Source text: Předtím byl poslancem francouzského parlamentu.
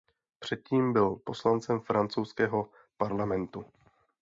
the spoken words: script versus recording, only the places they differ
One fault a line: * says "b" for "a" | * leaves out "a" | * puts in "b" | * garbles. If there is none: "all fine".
all fine